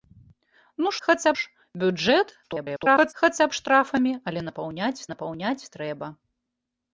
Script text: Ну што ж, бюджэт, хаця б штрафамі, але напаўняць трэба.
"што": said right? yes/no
no